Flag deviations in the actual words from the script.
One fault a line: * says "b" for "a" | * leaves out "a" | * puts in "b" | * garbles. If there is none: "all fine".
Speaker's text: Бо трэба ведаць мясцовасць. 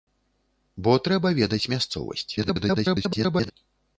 * garbles